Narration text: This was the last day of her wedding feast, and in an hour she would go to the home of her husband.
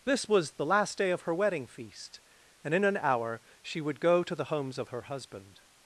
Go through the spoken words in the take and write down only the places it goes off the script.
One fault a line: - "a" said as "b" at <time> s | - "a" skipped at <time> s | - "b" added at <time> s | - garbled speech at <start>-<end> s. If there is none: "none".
- "home" said as "homes" at 4.4 s